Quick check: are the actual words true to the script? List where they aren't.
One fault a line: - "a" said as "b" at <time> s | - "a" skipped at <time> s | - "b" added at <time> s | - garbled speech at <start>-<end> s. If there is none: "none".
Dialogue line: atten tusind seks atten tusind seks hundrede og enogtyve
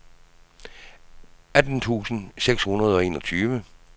- "atten tusind seks" skipped at 2.6 s